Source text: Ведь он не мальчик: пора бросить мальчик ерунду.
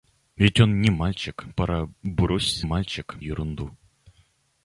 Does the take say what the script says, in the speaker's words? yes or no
yes